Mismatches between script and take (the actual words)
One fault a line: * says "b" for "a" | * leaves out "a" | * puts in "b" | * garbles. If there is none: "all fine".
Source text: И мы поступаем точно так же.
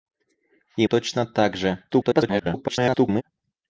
* leaves out "мы поступаем"
* garbles